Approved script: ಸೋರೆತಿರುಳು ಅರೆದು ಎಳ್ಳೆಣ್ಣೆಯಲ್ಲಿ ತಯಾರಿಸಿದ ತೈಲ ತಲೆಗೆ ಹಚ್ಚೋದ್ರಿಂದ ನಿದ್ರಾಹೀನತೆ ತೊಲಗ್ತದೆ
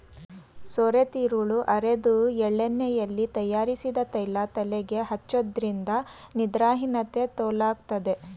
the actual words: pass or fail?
pass